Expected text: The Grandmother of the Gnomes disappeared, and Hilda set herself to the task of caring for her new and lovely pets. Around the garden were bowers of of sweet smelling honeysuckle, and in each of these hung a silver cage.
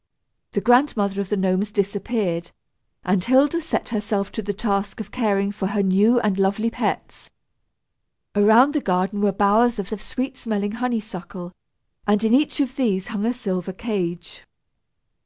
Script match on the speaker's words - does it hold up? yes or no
yes